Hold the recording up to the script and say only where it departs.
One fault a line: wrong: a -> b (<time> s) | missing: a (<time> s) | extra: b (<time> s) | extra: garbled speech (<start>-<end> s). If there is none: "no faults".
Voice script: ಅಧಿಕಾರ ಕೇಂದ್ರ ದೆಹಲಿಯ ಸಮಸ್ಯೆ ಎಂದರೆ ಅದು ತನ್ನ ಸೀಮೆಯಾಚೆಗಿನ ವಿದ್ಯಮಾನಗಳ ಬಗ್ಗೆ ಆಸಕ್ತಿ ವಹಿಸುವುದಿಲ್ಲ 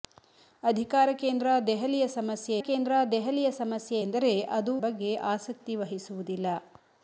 wrong: ಎಂದರೆ ಅದು ತನ್ನ ಸೀಮೆಯಾಚೆಗಿನ ವಿದ್ಯಮಾನಗಳ -> ಕೇಂದ್ರ ದೆಹಲಿಯ ಸಮಸ್ಯೆ ಎಂದರೆ ಅದು (2.6 s)